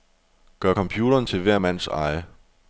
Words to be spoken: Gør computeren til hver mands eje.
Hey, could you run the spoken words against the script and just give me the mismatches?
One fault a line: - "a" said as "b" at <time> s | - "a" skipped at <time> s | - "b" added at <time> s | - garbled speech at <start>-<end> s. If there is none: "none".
none